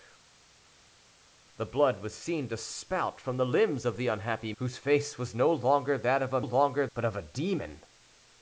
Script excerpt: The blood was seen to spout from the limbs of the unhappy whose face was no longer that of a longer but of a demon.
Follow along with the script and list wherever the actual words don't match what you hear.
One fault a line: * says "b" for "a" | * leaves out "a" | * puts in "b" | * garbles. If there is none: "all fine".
all fine